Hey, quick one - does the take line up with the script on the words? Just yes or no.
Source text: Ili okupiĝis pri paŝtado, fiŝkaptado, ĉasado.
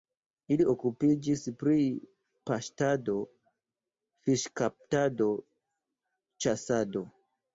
yes